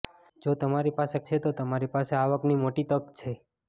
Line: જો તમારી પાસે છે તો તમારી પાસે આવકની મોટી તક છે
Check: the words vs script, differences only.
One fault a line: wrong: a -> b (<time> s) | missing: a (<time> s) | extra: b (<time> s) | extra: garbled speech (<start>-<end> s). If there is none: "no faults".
no faults